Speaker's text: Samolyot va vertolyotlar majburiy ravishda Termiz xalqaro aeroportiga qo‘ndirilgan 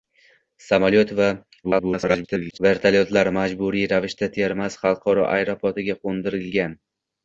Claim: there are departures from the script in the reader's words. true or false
true